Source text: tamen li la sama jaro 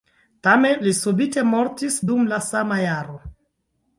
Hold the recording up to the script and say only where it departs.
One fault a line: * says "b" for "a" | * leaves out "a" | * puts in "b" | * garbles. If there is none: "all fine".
* puts in "subite mortis dum"